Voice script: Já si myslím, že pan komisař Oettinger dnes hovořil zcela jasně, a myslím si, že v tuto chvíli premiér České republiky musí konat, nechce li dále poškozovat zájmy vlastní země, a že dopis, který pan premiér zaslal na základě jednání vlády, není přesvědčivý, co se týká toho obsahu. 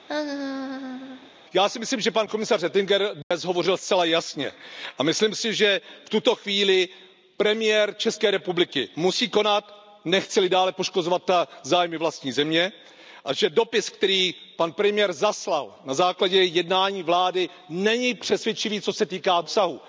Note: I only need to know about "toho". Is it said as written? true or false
false